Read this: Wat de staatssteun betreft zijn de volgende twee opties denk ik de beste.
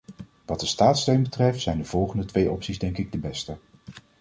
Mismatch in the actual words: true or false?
false